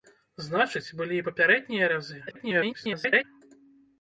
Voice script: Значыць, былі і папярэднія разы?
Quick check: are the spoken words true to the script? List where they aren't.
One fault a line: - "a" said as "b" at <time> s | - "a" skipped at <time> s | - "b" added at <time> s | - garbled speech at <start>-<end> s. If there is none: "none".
- garbled speech at 2.3-3.2 s